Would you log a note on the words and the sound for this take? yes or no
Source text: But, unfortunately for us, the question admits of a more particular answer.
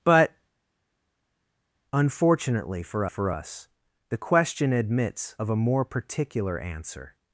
yes